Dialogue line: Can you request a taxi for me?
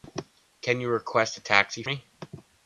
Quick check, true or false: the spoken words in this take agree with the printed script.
false